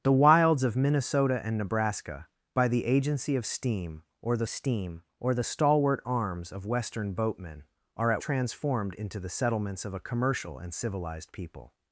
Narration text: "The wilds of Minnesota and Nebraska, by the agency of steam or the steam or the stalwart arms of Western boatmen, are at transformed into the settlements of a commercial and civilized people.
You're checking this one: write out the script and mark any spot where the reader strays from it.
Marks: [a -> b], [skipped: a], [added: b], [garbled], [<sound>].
"The wilds of Minnesota and Nebraska, by the agency of steam or the steam or the stalwart arms of Western boatmen, are at transformed into the settlements of a commercial and civilized people.